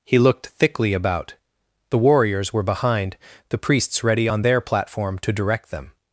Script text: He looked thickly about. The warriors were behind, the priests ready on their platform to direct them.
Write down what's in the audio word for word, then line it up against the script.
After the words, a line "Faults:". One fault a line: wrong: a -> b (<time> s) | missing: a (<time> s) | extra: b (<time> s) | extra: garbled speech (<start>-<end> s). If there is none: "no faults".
He looked thickly about. The warriors were behind, the priests ready on their platform to direct them.
Faults:
no faults